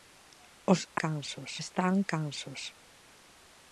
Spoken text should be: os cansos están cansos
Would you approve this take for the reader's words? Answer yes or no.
yes